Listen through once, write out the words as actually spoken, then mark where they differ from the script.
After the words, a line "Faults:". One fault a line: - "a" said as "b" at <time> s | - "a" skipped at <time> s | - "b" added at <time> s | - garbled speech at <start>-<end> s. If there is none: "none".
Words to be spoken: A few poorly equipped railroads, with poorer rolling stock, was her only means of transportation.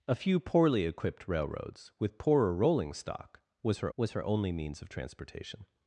A few poorly equipped railroads, with poorer rolling stock, was her was her only means of transportation.
Faults:
- "was her" added at 4.0 s